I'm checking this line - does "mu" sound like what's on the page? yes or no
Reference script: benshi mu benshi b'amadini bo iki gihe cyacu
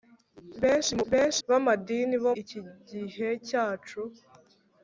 yes